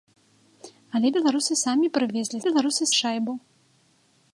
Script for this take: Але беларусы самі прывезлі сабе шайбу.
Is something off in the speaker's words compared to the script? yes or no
yes